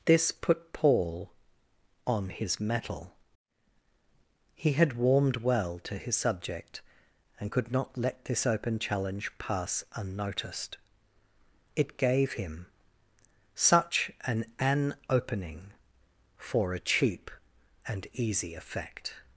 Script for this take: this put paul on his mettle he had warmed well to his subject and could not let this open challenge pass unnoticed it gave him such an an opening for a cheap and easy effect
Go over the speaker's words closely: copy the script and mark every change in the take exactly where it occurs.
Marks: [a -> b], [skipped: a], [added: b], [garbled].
this put paul on his mettle he had warmed well to his subject and could not let this open challenge pass unnoticed it gave him such an an opening for a cheap and easy effect